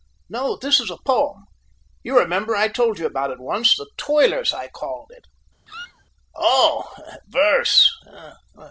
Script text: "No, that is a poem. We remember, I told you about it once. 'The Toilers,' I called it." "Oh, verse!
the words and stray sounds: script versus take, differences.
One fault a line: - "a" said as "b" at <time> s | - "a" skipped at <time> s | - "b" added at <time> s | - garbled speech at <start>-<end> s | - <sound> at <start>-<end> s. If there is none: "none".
- "that" said as "this" at 0.6 s
- "We" said as "You" at 2.0 s
- squeak at 5.7-6.1 s